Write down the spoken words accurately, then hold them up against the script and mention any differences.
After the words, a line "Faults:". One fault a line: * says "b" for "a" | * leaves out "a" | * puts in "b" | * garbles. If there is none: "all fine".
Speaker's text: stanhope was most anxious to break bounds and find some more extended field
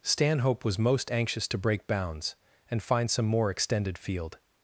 stanhope was most anxious to break bounds and find some more extended field
Faults:
all fine